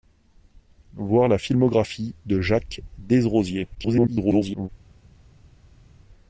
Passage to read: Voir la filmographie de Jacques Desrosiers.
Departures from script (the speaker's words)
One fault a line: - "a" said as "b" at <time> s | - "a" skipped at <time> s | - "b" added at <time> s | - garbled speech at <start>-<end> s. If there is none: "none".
- garbled speech at 3.7-4.7 s